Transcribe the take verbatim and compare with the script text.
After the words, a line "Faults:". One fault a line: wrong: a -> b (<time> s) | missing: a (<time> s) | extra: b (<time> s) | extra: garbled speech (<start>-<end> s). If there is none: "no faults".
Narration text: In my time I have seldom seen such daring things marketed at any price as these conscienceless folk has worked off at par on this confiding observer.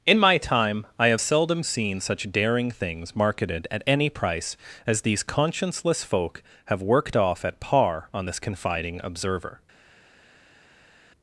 In my time I have seldom seen such daring things marketed at any price as these conscienceless folk have worked off at par on this confiding observer.
Faults:
wrong: has -> have (6.7 s)